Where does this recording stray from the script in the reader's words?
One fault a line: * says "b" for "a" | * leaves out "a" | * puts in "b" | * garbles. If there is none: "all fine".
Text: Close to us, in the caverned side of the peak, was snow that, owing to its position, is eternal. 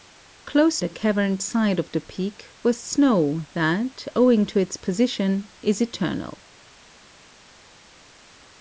* leaves out "to us in"